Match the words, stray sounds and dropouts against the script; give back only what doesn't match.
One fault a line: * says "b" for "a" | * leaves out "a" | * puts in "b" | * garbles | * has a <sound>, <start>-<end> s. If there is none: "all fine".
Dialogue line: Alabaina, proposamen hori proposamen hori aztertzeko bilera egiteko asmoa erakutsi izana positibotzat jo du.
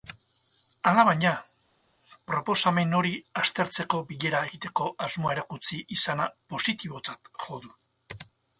* leaves out "proposamen hori"